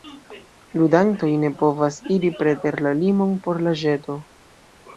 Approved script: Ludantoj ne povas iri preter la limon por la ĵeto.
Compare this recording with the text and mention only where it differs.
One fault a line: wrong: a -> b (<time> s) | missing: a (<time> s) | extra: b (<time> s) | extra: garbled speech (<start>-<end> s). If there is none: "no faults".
no faults